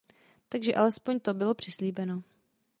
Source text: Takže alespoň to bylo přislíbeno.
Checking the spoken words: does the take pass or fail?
pass